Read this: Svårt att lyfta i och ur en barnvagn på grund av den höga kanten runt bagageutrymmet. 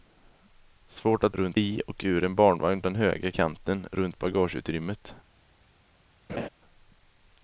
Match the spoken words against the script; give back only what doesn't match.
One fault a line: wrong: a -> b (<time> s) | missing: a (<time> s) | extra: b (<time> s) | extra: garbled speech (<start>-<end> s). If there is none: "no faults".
wrong: lyfta -> runt (1.3 s)
missing: på grund av (2.8 s)